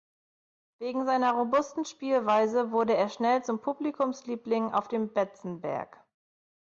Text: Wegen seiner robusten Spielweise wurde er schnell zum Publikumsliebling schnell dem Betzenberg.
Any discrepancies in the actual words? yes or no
yes